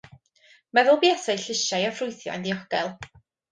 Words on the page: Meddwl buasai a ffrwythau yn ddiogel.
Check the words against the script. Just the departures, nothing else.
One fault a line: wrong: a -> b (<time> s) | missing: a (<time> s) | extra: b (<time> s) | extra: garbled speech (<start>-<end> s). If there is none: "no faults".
extra: llysiau (1.4 s)